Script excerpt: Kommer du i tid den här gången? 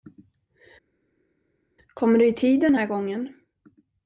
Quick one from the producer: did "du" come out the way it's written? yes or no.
yes